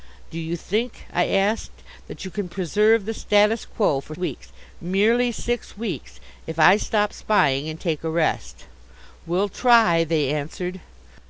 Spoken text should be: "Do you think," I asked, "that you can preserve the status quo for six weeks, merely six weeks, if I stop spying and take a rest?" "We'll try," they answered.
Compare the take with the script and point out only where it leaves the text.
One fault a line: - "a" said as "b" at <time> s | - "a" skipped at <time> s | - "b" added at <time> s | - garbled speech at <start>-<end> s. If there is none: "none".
- "six" skipped at 4.2 s